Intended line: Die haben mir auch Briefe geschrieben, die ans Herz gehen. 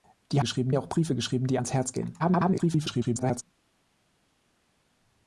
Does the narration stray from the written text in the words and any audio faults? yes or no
yes